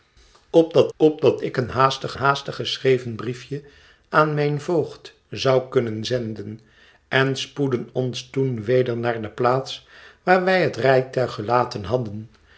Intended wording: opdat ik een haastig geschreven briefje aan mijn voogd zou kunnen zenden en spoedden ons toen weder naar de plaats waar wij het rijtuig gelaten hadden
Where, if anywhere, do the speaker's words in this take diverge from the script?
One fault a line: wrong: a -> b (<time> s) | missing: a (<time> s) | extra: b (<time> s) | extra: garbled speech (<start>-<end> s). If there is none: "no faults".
extra: opdat (1.0 s)
extra: haastig (2.1 s)